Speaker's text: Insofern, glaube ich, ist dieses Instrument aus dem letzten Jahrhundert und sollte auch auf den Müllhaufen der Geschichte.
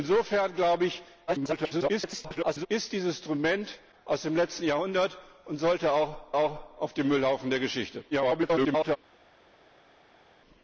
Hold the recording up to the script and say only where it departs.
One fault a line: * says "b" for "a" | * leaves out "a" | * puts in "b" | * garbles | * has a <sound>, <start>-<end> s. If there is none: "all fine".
* garbles
* puts in "auch"
* garbles